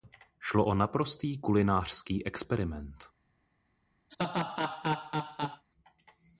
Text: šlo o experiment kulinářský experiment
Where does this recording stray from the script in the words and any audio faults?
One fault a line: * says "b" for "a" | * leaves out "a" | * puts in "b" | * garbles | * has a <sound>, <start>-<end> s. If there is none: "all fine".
* says "naprostý" for "experiment"
* has a laugh, 4.1-5.6 s